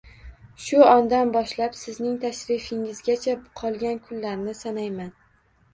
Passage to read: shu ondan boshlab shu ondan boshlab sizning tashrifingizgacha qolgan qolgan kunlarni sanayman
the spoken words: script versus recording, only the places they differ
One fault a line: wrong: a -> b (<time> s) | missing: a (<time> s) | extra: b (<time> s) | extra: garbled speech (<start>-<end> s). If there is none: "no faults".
missing: shu ondan boshlab (1.8 s)
missing: qolgan (4.0 s)